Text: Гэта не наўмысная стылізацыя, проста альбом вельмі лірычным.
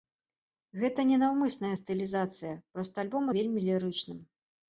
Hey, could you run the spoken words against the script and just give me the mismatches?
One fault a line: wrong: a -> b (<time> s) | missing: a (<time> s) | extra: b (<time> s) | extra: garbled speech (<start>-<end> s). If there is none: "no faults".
no faults